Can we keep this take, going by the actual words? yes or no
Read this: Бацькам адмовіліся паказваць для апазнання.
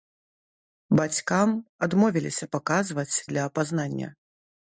yes